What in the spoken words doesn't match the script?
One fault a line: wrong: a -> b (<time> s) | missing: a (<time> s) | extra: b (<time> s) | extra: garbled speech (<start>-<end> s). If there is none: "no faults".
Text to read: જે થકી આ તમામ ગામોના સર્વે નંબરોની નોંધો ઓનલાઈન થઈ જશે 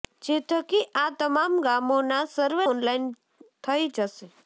missing: નંબરોની નોંધો (2.6 s)